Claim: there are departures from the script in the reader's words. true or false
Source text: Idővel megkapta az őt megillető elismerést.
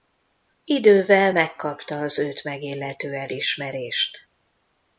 false